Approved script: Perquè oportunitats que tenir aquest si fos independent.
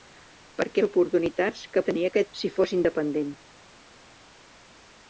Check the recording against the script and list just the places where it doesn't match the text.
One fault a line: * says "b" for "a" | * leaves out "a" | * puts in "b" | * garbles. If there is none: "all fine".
all fine